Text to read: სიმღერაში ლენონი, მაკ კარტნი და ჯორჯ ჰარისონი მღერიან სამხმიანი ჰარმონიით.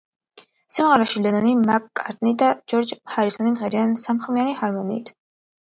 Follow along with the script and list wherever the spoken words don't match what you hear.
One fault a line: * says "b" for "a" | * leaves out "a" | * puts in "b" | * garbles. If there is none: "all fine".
all fine